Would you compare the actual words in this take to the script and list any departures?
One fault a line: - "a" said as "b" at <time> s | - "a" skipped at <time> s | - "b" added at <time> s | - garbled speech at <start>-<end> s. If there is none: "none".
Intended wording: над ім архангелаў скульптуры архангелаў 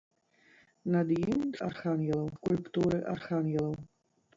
none